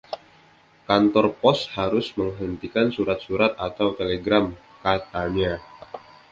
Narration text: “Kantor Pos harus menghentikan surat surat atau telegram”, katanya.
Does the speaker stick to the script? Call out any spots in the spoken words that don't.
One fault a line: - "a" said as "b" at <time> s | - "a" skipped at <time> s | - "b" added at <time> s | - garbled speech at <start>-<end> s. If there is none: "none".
none